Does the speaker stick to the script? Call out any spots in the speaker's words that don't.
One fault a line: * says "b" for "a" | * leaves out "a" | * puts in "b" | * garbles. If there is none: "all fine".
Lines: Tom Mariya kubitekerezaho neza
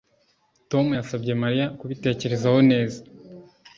* puts in "yasabye"